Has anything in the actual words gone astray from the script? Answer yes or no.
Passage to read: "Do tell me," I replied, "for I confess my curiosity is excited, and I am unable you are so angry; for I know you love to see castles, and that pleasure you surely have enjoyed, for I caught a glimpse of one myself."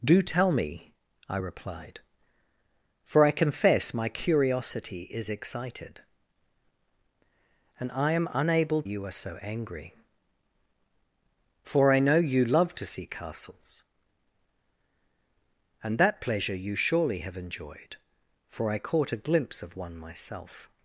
no